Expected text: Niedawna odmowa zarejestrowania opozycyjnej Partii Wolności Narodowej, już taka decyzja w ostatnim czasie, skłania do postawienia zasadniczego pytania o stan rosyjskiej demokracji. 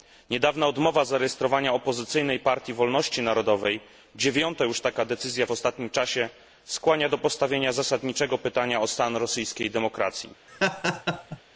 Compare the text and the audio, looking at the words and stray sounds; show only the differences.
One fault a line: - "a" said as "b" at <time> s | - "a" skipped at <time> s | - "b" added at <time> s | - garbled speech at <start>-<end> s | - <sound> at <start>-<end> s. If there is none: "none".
- "dziewiąta" added at 4.2 s
- laugh at 10.5-11.4 s